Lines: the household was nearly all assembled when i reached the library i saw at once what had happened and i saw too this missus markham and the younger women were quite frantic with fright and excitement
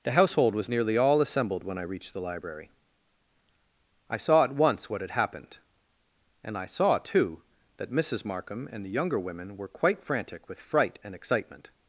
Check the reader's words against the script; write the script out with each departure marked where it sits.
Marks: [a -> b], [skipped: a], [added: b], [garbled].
the household was nearly all assembled when i reached the library i saw at once what had happened and i saw too [this -> that] missus markham and the younger women were quite frantic with fright and excitement